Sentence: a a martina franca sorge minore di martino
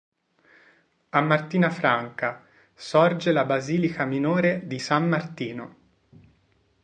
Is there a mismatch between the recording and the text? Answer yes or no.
yes